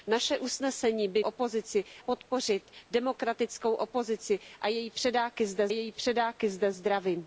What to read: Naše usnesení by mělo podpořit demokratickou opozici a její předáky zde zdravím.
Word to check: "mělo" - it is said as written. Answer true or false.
false